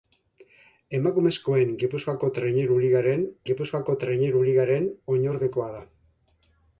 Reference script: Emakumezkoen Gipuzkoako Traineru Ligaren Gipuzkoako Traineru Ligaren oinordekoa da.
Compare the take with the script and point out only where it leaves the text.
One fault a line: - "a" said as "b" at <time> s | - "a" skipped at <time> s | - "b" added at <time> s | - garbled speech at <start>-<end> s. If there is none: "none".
none